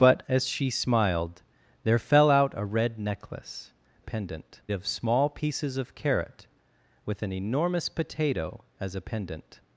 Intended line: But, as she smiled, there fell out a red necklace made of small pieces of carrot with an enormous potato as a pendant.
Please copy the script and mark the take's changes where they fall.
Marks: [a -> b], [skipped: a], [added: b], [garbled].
But, as she smiled, there fell out a red necklace [made -> pendant] of small pieces of carrot with an enormous potato as a pendant.